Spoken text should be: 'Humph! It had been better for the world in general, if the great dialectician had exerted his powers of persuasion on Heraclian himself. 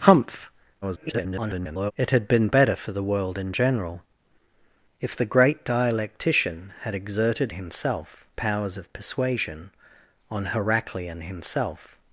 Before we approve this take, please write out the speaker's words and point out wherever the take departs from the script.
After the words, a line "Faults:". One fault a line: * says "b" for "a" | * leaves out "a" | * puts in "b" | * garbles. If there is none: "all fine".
'Humph! [garbled] It had been better for the world in general, if the great dialectician had exerted himself powers of persuasion on Heraclian himself.
Faults:
* garbles
* says "himself" for "his"